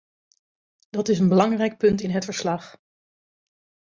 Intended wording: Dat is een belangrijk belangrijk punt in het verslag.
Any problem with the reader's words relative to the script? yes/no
yes